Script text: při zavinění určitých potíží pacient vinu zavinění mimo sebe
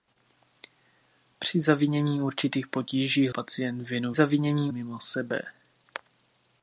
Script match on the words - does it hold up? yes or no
yes